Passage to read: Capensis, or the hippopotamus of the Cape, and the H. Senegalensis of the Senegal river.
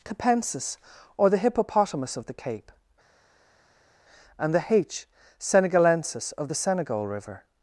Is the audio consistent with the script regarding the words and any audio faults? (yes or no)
yes